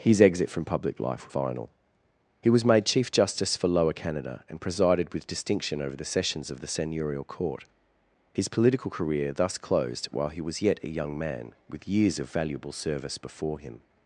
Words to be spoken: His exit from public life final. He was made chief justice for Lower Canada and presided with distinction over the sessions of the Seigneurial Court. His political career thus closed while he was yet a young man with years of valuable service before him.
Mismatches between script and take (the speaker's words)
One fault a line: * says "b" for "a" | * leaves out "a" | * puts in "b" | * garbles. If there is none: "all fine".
all fine